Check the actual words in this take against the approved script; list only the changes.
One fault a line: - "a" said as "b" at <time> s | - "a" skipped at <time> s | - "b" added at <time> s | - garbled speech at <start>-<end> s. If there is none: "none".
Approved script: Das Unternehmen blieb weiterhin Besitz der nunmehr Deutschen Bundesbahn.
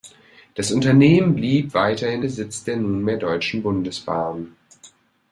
none